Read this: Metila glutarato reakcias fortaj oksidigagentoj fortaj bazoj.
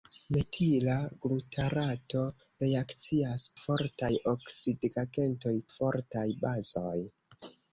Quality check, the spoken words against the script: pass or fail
pass